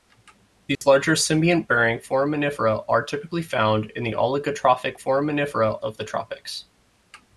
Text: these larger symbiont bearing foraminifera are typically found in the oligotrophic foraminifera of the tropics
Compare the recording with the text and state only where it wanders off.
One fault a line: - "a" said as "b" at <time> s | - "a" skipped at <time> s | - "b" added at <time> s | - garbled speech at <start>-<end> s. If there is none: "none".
none